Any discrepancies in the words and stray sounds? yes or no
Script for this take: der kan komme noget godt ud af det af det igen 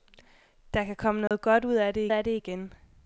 yes